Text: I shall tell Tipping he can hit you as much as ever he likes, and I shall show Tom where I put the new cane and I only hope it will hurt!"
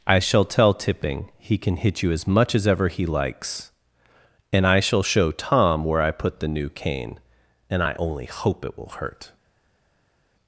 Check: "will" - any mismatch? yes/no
no